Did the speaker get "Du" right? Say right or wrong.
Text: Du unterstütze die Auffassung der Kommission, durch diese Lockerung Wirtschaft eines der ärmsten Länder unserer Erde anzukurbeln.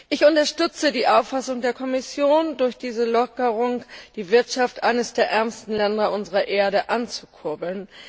wrong